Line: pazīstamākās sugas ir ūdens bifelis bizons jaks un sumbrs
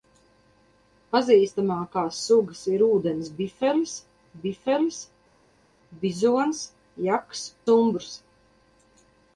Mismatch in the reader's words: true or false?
true